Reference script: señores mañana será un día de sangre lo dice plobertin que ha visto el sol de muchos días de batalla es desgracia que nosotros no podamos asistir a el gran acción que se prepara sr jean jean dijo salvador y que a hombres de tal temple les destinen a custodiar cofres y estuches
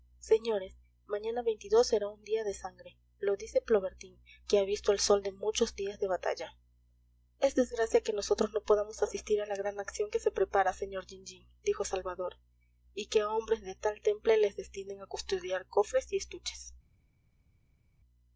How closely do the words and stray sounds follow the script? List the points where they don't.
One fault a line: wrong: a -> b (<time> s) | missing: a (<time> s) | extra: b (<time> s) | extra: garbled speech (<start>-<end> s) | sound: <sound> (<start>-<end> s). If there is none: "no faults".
wrong: el -> la (9.4 s)